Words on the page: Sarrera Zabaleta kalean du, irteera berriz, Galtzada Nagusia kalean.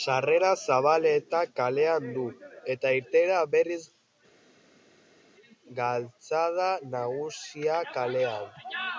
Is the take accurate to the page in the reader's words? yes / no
no